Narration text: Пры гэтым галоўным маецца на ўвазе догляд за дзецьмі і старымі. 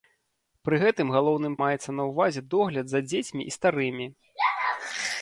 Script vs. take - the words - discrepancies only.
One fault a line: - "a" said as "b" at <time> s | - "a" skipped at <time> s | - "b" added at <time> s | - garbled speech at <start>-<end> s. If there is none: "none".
none